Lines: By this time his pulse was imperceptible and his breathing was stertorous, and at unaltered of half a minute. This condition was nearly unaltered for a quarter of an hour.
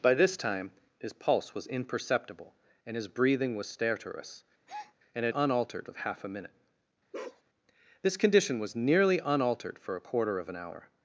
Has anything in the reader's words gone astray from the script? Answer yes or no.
no